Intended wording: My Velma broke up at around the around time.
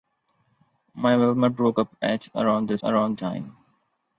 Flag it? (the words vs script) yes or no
no